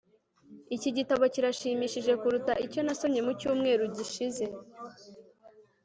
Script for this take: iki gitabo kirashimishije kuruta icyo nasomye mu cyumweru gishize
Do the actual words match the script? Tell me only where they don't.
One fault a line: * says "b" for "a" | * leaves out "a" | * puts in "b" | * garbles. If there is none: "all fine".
all fine